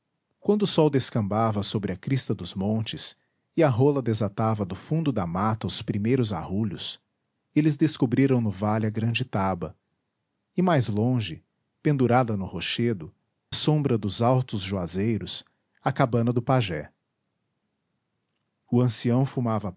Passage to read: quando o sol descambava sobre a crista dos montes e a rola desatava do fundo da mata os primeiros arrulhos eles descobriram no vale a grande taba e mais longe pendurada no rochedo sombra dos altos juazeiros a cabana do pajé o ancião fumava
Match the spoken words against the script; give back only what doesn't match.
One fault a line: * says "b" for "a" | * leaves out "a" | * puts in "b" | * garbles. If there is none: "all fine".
all fine